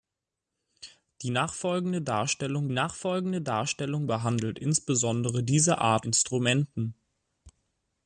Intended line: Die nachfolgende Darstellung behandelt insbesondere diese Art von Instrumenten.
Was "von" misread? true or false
true